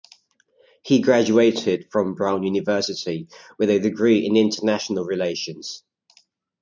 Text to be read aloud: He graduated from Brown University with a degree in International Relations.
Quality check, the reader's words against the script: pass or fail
pass